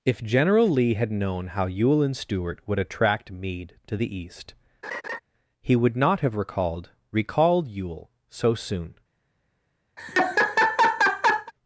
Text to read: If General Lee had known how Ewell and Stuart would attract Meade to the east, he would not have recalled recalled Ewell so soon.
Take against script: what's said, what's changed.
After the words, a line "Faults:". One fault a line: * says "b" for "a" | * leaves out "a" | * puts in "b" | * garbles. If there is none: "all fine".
If General Lee had known how Ewell and Stuart would attract Meade to the east, he would not have recalled recalled Ewell so soon.
Faults:
all fine